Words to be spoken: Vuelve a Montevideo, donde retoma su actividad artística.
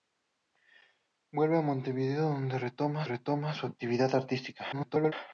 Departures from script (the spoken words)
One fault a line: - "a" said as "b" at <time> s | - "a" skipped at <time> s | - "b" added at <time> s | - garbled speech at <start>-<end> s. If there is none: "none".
- "retoma" added at 3.0 s
- garbled speech at 4.7-5.1 s